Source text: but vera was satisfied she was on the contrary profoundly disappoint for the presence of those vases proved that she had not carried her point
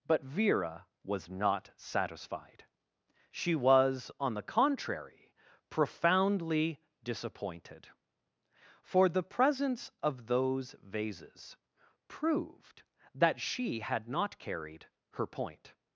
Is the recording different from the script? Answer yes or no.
yes